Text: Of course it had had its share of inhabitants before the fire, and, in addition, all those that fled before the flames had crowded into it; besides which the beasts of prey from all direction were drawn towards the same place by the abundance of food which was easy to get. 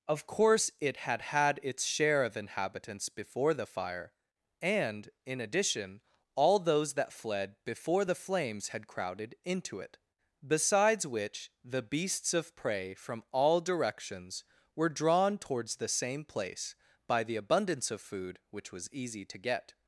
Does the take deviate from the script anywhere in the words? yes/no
yes